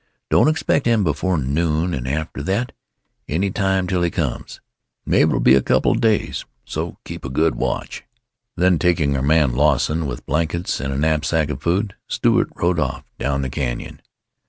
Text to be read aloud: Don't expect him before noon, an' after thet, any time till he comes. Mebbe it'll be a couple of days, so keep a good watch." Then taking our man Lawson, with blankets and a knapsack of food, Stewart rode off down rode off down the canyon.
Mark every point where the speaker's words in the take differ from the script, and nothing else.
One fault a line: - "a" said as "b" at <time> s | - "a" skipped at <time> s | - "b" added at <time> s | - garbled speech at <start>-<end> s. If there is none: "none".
- "rode off down" skipped at 13.4 s